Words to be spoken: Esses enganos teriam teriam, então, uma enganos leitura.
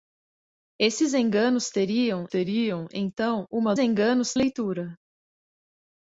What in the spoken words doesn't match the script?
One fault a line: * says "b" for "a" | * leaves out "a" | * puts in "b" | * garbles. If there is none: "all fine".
all fine